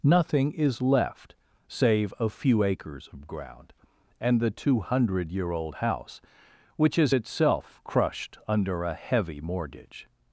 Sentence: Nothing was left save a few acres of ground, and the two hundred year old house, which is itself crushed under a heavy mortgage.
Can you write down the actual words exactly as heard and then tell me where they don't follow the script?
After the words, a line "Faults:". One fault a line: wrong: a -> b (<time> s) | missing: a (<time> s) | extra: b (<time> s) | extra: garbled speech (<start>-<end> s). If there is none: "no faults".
Nothing is left save a few acres of ground, and the two hundred year old house, which is itself crushed under a heavy mortgage.
Faults:
wrong: was -> is (0.5 s)